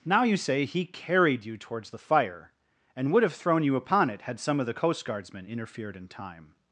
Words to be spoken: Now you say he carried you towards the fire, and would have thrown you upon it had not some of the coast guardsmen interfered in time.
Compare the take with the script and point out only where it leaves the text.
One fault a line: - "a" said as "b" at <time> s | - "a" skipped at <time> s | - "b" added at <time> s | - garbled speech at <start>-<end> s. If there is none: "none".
- "not" skipped at 4.4 s